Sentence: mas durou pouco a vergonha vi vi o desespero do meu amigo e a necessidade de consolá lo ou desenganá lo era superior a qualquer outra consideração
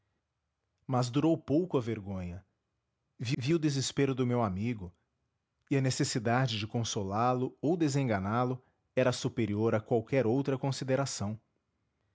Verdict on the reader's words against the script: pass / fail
pass